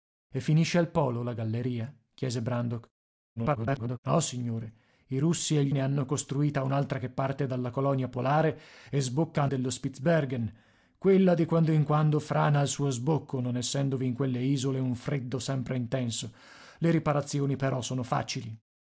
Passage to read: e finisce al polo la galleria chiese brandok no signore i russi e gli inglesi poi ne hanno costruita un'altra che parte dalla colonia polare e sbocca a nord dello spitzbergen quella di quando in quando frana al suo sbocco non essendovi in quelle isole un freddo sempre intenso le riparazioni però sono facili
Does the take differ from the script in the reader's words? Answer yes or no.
yes